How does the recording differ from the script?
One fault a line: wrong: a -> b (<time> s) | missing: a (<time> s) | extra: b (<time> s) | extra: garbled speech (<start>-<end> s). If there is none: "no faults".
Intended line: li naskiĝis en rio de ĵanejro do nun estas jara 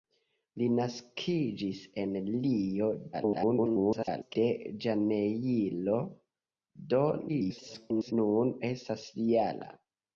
extra: garbled speech (3.1-4.3 s)
extra: garbled speech (7.3-8.1 s)